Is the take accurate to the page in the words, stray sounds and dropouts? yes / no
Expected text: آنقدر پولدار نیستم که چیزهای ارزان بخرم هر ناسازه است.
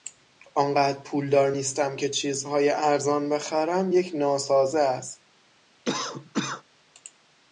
no